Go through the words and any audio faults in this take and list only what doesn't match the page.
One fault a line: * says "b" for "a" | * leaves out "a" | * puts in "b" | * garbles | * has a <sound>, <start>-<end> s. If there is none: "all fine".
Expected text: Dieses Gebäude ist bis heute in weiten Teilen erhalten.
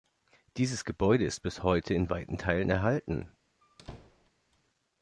* has a squeak, 3.6-4.3 s